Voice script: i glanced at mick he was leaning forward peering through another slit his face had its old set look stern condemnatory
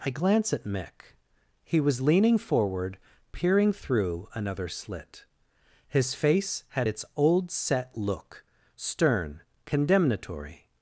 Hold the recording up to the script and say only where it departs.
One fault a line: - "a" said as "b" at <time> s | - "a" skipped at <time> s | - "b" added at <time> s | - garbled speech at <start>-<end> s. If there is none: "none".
- "glanced" said as "glance" at 0.1 s